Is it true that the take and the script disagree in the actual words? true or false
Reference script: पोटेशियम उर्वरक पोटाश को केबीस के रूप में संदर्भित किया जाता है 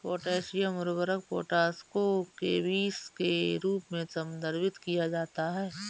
false